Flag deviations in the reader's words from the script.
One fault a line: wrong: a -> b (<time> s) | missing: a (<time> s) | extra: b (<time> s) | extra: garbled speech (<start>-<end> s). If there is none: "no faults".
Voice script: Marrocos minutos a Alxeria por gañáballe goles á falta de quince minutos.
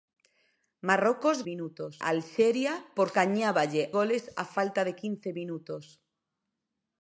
no faults